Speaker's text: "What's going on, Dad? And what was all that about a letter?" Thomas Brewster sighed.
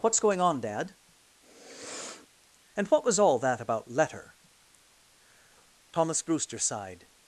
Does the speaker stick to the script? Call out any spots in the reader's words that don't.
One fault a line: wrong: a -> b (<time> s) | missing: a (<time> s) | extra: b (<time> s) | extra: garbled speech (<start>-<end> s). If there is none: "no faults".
missing: a (3.9 s)